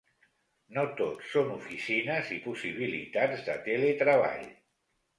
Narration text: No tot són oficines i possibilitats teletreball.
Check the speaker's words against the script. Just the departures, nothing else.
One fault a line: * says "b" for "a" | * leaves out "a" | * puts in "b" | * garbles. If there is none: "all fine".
* puts in "de"